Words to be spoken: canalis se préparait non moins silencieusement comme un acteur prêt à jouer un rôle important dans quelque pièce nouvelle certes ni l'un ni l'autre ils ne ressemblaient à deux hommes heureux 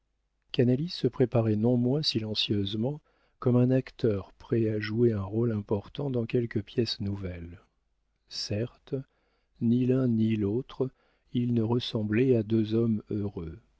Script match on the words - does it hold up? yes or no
yes